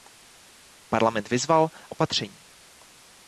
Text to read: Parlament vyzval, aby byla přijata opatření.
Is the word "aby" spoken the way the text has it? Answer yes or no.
no